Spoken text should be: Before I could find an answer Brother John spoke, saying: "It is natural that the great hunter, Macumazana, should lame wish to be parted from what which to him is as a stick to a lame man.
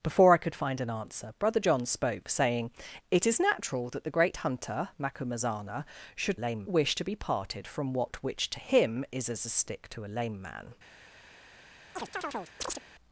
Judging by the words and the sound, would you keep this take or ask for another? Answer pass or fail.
fail